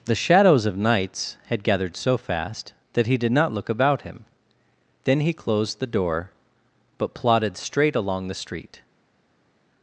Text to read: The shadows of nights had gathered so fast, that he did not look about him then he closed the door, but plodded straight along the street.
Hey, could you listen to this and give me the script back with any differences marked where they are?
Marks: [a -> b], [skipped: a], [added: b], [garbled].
The shadows of nights had gathered so fast, that he did not look about him then he closed the door, but plodded straight along the street.